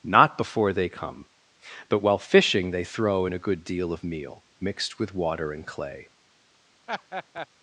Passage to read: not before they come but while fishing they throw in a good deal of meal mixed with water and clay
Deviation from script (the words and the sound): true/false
true